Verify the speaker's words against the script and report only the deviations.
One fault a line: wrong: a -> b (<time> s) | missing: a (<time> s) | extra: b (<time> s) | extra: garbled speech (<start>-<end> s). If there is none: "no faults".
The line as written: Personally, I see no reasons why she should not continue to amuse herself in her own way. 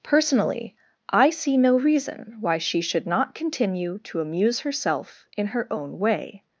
wrong: reasons -> reason (1.8 s)